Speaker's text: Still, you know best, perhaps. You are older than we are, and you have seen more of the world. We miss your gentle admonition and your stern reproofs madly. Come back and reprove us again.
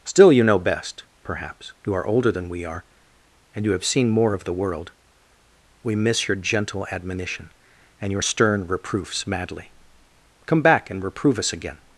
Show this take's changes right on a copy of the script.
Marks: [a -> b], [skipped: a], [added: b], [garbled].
Still, you know best, perhaps. You are older than we are, and you have seen more of the world. We miss your gentle admonition and your stern reproofs madly. Come back and reprove us again.